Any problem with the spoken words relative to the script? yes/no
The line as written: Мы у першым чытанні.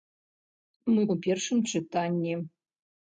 no